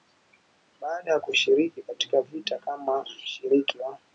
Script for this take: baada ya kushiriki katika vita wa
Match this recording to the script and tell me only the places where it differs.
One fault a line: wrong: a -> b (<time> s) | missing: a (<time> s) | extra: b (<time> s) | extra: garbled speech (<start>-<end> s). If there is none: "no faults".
extra: kama mshiriki (2.6 s)